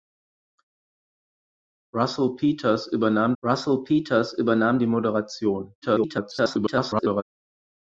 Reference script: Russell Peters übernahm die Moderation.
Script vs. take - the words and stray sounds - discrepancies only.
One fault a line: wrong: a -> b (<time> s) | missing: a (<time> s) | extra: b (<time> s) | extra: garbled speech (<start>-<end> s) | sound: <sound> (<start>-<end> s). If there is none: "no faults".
extra: russell Peters übernahm (3.4 s)
extra: garbled speech (5.8-7.2 s)